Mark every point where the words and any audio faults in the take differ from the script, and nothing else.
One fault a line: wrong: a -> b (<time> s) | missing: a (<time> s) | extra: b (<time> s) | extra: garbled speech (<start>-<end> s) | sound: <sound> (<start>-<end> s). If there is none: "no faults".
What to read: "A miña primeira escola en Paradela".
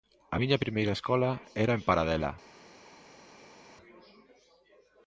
extra: era (1.6 s)